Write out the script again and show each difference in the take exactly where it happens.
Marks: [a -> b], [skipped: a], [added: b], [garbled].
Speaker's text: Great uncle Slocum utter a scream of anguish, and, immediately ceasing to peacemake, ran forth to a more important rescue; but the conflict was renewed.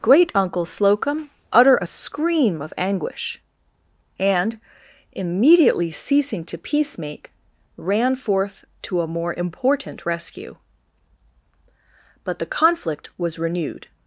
Great uncle Slocum utter a scream of anguish, and, immediately ceasing to peacemake, ran forth to a more important rescue; but the conflict was renewed.